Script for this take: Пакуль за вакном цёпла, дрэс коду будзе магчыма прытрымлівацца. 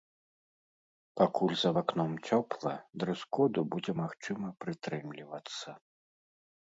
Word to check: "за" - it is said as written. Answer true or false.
true